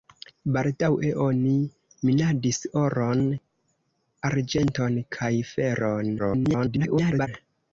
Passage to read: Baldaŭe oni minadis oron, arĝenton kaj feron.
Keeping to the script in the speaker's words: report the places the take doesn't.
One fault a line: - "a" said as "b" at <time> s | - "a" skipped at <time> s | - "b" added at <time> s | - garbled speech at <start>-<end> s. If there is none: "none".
- garbled speech at 6.2-7.3 s